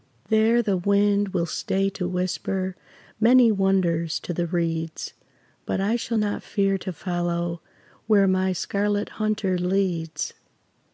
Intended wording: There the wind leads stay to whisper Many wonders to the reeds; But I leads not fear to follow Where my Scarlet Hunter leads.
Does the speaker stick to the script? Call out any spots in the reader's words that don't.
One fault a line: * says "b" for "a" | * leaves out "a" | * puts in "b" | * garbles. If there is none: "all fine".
* says "will" for "leads"
* says "shall" for "leads"